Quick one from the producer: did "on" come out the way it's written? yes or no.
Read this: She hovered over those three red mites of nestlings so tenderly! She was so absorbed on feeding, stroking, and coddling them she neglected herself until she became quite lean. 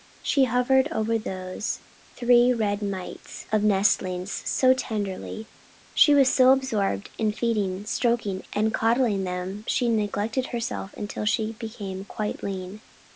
no